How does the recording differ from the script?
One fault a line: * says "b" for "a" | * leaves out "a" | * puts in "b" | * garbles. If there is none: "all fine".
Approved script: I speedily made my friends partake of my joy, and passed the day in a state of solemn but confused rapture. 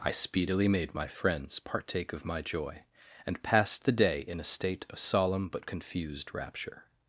all fine